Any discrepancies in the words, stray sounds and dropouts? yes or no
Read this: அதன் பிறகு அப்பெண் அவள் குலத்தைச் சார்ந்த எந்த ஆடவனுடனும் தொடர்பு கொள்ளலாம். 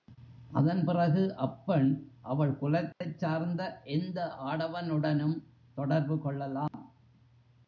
yes